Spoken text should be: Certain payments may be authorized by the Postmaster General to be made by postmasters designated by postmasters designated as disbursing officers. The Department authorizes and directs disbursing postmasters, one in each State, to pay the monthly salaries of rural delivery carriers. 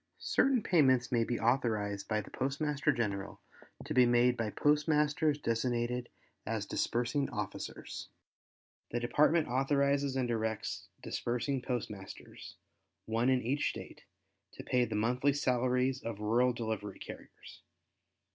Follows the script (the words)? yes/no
no